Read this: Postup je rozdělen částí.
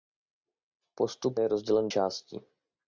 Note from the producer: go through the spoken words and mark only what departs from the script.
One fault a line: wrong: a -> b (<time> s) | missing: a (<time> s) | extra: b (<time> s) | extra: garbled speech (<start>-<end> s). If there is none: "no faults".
no faults